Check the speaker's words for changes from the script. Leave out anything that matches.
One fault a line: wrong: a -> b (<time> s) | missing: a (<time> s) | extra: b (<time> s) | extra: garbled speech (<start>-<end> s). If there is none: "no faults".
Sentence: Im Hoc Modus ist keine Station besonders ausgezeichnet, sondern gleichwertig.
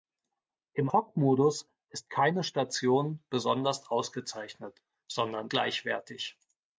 no faults